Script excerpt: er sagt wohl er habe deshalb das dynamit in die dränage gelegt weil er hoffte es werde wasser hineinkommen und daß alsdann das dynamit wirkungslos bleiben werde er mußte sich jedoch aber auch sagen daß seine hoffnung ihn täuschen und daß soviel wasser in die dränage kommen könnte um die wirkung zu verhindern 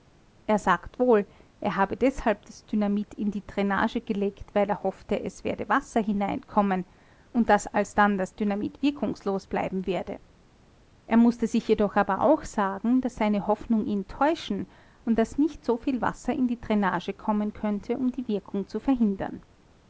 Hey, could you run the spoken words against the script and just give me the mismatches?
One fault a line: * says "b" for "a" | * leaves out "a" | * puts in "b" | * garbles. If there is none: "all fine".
* puts in "nicht"